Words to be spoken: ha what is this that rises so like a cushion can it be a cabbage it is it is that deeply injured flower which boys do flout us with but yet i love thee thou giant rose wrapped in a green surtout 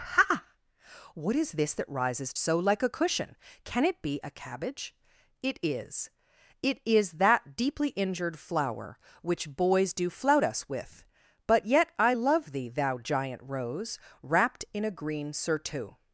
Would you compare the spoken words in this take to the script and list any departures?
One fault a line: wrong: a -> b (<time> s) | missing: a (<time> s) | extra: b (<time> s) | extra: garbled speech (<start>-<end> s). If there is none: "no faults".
no faults